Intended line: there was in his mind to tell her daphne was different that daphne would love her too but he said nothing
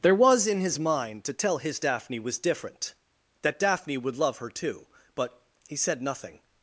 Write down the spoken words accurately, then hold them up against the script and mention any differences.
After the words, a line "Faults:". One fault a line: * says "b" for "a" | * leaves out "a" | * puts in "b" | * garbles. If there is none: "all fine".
there was in his mind to tell his daphne was different that daphne would love her too but he said nothing
Faults:
* says "his" for "her"